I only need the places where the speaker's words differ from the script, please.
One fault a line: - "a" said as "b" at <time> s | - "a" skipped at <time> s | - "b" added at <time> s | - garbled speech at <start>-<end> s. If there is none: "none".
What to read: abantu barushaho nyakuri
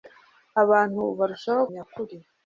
none